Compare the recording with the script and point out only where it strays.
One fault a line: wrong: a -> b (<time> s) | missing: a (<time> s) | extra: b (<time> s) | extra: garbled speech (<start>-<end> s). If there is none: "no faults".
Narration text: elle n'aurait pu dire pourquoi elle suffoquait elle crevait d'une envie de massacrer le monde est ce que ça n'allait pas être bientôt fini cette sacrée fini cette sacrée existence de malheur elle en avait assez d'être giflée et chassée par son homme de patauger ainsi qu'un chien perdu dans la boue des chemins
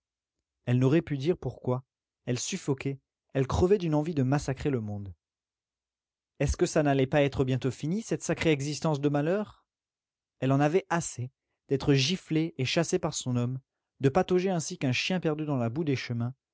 missing: fini cette sacrée (8.5 s)